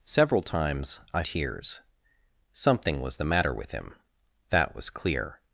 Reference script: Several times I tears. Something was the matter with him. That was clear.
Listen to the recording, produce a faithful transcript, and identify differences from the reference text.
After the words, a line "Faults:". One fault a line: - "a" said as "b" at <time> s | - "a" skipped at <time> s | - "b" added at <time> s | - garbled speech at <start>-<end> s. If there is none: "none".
Several times I tears. Something was the matter with him. That was clear.
Faults:
none